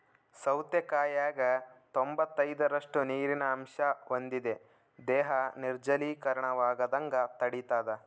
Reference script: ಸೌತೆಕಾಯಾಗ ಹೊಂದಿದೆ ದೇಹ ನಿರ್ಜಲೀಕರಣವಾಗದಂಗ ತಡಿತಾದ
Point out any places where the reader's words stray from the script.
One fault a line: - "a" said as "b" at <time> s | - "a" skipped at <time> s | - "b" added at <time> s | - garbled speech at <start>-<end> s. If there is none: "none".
- "ತೊಂಬತ್ತೈದರಷ್ಟು ನೀರಿನ ಅಂಶ" added at 1.9 s